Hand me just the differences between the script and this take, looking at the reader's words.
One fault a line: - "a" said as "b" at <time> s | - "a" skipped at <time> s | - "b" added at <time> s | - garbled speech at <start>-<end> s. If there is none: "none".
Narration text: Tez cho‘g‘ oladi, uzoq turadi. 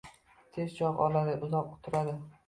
none